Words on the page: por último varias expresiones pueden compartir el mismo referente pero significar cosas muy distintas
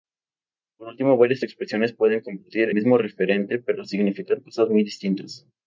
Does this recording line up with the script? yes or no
no